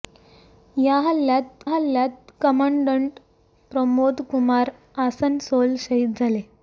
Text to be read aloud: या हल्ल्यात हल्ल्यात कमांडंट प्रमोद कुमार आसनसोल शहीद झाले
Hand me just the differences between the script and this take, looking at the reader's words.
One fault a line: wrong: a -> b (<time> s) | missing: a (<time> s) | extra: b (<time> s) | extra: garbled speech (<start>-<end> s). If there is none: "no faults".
no faults